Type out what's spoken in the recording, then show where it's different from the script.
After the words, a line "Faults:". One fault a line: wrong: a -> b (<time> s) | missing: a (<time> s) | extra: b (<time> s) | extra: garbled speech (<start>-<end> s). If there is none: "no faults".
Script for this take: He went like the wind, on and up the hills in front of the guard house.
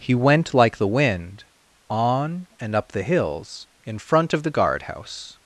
He went like the wind, on and up the hills in front of the guard house.
Faults:
no faults